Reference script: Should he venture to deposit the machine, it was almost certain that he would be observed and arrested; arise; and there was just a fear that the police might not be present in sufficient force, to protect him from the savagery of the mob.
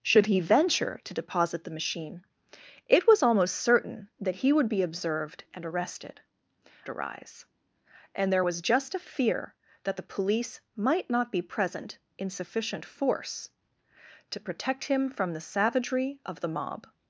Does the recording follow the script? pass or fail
pass